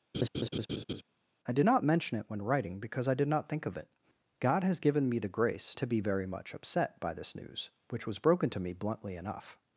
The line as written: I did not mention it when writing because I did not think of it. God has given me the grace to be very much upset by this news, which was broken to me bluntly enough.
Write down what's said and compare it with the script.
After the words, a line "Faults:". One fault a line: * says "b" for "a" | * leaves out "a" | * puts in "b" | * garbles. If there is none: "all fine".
I did not mention it when writing because I did not think of it. God has given me the grace to be very much upset by this news, which was broken to me bluntly enough.
Faults:
all fine